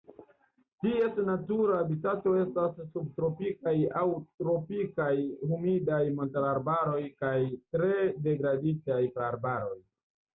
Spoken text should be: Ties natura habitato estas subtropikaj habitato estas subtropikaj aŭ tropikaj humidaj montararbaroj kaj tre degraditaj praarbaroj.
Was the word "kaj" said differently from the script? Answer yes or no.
no